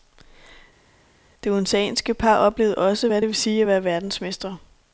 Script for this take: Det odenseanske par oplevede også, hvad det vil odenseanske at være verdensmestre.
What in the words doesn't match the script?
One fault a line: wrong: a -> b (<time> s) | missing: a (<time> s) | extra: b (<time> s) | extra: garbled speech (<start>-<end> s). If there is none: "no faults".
wrong: odenseanske -> sige (3.3 s)